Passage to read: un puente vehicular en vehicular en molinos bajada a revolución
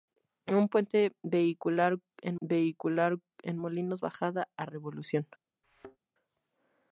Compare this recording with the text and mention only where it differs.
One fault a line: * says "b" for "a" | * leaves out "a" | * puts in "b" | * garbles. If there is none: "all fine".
all fine